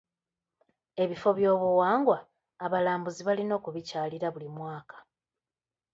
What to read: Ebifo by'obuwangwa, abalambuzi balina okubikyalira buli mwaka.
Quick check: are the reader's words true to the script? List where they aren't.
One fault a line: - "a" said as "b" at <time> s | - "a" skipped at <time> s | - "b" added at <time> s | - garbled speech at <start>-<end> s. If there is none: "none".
none